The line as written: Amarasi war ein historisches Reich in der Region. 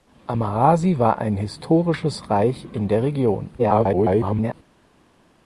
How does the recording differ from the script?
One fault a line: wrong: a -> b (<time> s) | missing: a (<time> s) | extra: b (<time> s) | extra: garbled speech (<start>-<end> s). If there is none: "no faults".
extra: garbled speech (3.6-4.5 s)